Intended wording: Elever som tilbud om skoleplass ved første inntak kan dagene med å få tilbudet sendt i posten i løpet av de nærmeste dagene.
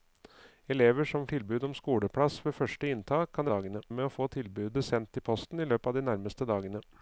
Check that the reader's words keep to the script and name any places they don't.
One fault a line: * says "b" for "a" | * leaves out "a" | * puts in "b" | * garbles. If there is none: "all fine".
all fine